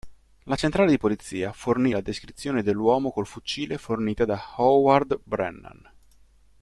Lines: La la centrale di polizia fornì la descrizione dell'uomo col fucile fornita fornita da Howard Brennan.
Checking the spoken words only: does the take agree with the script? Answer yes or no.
no